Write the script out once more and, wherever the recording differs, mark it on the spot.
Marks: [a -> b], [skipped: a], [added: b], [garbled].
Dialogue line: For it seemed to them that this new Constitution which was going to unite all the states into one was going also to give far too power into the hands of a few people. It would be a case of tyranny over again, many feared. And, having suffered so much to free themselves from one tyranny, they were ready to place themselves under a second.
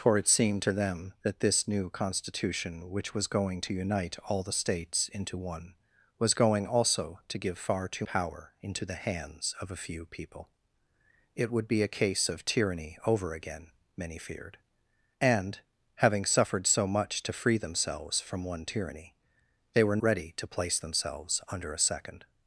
For it seemed to them that this new Constitution which was going to unite all the states into one was going also to give far too power into the hands of a few people. It would be a case of tyranny over again, many feared. And, having suffered so much to free themselves from one tyranny, they were ready to place themselves under a second.